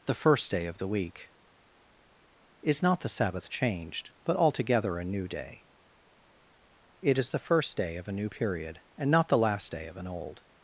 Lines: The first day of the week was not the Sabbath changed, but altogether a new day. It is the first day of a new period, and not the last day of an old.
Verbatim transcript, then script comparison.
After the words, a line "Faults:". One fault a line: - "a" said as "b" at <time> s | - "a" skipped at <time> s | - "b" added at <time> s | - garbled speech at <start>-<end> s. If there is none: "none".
The first day of the week is not the Sabbath changed, but altogether a new day. It is the first day of a new period, and not the last day of an old.
Faults:
- "was" said as "is" at 2.6 s